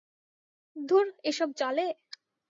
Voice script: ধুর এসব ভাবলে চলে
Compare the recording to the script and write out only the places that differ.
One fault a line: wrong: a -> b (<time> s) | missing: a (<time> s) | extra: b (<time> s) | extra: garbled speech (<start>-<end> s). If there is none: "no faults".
missing: ভাবলে (1.5 s)